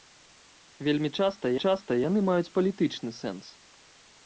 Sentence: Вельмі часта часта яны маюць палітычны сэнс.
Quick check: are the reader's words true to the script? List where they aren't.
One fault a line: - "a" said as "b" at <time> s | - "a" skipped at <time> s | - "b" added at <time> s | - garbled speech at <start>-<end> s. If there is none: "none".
none